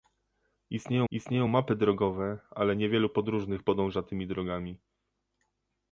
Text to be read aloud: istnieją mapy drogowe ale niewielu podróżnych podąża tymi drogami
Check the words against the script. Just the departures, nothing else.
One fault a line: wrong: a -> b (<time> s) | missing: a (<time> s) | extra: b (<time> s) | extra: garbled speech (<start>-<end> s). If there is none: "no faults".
extra: istnieją (1.1 s)